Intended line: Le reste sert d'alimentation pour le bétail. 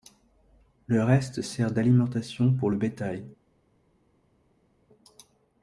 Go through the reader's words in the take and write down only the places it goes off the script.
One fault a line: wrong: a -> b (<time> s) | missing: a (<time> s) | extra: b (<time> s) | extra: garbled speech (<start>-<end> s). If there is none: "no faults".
no faults